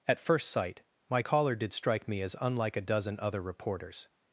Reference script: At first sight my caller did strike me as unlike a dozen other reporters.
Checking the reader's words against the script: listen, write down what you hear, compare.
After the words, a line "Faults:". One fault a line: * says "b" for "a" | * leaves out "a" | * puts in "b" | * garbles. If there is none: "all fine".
At first sight my caller did strike me as unlike a dozen other reporters.
Faults:
all fine